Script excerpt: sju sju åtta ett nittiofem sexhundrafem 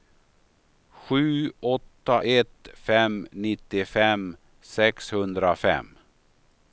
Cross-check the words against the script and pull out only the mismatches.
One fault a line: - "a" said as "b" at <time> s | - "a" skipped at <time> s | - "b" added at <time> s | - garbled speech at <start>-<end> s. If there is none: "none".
- "sju" skipped at 1.5 s
- "fem" added at 2.7 s